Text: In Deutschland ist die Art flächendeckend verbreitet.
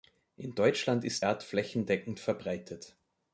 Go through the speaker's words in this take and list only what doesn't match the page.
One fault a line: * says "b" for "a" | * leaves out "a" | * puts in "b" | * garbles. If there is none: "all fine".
* leaves out "die"